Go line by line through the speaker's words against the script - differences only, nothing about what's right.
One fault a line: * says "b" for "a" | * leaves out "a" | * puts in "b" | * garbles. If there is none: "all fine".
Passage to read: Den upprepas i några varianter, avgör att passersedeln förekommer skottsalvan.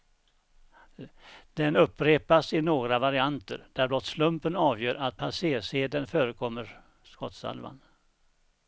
* puts in "där blott slumpen"